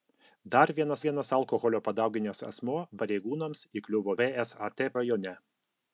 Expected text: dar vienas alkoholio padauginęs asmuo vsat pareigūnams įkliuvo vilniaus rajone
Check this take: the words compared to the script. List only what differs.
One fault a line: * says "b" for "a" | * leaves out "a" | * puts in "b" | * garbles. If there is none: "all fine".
* puts in "vienas"
* leaves out "vsat"
* says "vsat" for "vilniaus"